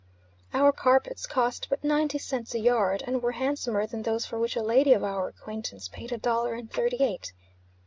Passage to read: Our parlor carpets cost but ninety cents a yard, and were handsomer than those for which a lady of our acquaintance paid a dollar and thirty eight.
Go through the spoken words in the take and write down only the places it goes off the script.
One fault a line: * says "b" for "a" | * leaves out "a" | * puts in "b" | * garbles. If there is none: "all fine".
* leaves out "parlor"